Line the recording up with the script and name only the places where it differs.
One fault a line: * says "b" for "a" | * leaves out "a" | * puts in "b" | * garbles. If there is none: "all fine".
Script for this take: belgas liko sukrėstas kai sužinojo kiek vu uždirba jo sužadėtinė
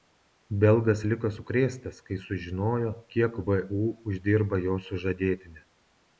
all fine